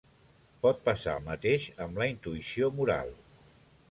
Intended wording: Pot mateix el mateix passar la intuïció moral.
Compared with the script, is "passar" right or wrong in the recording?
wrong